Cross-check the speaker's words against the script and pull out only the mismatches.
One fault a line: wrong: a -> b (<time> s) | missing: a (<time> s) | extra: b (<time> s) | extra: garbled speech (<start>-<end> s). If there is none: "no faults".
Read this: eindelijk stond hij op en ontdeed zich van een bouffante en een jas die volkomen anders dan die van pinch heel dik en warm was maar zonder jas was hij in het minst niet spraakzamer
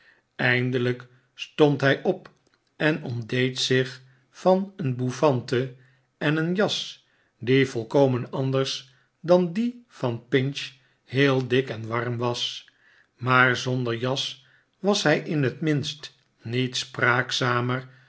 no faults